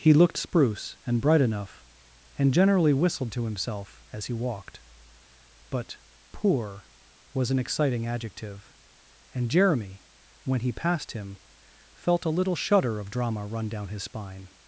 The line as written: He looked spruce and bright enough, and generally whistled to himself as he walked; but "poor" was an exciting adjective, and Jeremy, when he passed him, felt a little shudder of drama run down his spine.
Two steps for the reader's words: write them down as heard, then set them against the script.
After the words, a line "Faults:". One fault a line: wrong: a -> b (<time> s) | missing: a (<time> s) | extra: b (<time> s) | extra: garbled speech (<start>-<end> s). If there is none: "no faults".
He looked spruce and bright enough, and generally whistled to himself as he walked; but "poor" was an exciting adjective, and Jeremy, when he passed him, felt a little shudder of drama run down his spine.
Faults:
no faults